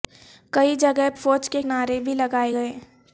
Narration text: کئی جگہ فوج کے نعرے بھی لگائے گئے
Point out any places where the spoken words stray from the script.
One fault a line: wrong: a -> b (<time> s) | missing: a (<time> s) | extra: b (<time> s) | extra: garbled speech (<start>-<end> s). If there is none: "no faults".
no faults